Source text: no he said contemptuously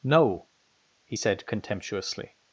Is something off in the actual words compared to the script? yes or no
no